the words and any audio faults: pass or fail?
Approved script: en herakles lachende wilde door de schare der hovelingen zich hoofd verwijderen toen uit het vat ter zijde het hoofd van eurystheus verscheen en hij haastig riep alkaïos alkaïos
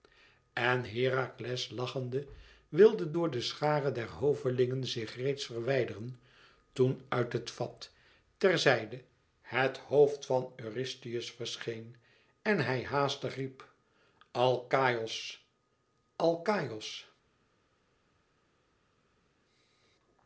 fail